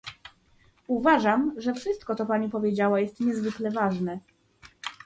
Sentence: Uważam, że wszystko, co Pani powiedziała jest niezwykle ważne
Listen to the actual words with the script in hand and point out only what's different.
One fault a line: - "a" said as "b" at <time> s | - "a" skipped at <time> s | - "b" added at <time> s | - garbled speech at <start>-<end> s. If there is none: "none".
none